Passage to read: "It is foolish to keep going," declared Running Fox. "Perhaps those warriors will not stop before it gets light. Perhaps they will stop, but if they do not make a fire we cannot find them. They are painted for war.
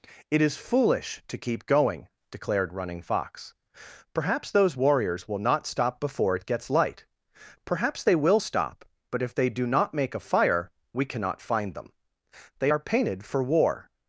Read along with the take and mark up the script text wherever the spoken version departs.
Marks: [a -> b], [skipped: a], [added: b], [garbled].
"It is foolish to keep going," declared Running Fox. "Perhaps those warriors will not stop before it gets light. Perhaps they will stop, but if they do not make a fire we cannot find them. They are painted for war.